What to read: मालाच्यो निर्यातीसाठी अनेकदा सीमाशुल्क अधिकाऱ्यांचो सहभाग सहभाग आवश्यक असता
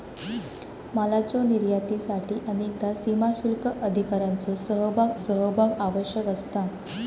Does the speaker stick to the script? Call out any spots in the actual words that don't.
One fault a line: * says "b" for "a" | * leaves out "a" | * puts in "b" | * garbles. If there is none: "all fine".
all fine